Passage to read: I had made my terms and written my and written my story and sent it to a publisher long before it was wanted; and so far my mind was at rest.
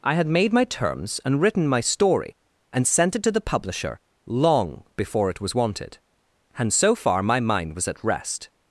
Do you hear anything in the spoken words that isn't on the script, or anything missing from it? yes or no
yes